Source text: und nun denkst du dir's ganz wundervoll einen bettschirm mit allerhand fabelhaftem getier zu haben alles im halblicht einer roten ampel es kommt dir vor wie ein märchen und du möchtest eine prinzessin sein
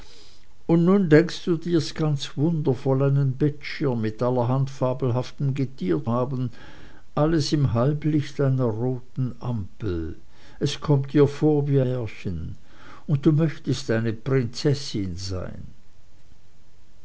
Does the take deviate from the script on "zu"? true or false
true